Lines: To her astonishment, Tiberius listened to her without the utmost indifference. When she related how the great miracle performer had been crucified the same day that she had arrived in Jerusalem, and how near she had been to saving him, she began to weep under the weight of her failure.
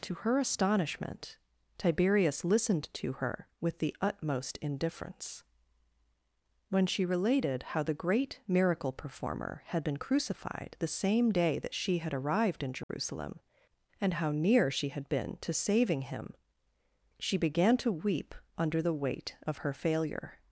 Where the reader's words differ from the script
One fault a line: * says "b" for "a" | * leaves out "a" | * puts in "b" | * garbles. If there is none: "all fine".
* says "with" for "without"